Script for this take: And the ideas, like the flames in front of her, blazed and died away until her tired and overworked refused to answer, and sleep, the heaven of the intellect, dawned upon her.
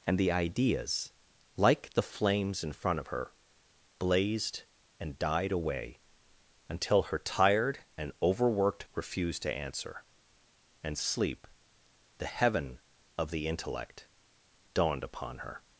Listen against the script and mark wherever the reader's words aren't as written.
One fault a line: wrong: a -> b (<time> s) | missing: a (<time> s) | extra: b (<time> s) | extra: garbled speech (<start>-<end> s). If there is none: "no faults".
no faults